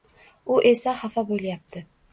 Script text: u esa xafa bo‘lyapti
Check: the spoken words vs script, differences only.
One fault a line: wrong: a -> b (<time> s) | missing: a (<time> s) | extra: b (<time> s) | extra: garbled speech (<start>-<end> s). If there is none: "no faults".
no faults